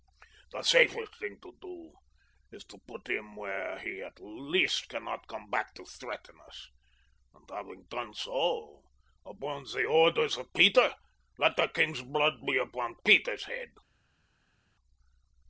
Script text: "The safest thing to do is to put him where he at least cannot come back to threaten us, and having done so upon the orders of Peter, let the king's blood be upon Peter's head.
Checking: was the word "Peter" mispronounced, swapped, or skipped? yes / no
no